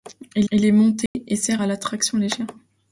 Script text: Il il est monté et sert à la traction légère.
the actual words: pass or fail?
pass